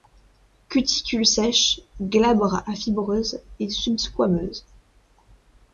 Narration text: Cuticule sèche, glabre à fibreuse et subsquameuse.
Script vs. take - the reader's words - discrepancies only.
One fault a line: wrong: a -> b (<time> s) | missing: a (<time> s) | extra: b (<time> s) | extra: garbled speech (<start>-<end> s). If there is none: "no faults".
no faults